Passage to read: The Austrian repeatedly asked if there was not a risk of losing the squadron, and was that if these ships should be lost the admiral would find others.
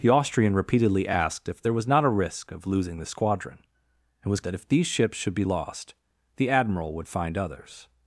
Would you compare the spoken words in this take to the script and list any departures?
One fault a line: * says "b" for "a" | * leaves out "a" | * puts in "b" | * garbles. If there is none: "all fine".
all fine